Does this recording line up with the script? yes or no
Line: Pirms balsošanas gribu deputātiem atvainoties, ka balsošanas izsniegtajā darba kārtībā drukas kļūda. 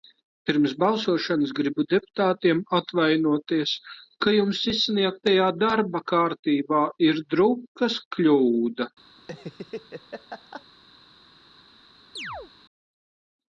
no